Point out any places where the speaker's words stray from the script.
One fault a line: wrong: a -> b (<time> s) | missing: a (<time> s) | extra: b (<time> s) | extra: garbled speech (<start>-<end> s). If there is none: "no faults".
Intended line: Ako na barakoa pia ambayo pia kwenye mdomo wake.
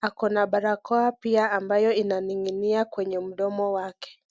wrong: pia -> inaninginia (1.9 s)